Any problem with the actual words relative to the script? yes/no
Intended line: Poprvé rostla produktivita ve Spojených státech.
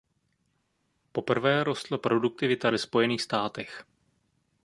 no